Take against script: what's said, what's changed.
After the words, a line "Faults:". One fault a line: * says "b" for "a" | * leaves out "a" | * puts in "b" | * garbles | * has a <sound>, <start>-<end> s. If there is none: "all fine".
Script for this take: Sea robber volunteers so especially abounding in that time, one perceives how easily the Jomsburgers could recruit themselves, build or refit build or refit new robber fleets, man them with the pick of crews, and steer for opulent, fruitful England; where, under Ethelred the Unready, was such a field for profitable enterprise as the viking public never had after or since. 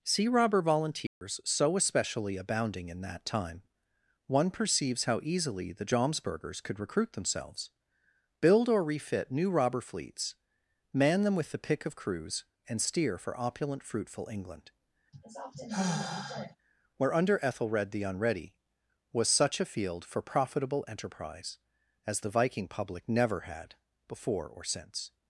Sea robber volunteers so especially abounding in that time, one perceives how easily the Jomsburgers could recruit themselves, build or refit new robber fleets, man them with the pick of crews, and steer for opulent, fruitful England; where, under Ethelred the Unready, was such a field for profitable enterprise as the viking public never had before or since.
Faults:
* has a dropout, 1.1-1.2 s
* leaves out "build or refit"
* has a sigh, 15.1-16.6 s
* says "before" for "after"